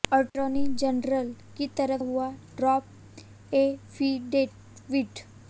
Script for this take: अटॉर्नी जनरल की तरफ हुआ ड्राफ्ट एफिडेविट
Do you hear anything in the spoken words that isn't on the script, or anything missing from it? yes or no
no